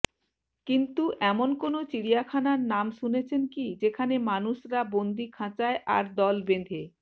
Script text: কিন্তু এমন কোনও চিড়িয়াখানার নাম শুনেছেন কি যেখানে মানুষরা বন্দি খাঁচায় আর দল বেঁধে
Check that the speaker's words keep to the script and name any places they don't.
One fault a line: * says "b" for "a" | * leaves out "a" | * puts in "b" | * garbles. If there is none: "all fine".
all fine